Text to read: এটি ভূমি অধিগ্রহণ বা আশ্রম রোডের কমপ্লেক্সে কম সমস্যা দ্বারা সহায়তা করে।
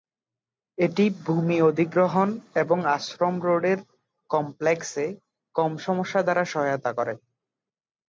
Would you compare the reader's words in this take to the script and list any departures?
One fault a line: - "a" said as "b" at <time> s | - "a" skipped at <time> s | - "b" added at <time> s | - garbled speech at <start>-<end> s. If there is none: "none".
- "বা" said as "এবং" at 2.5 s